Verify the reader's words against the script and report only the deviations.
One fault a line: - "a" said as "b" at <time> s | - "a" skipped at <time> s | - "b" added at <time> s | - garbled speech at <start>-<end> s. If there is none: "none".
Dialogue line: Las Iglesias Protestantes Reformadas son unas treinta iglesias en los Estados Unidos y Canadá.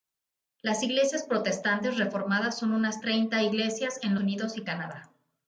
- "los Estados" skipped at 4.2 s